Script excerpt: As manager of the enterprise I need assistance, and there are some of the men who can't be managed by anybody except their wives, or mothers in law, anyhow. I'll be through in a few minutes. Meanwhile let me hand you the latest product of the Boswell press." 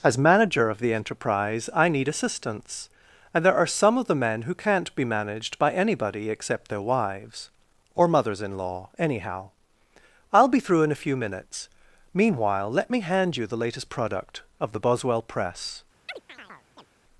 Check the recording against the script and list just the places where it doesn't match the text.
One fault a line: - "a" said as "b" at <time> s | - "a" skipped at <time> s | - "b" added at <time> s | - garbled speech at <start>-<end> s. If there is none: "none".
none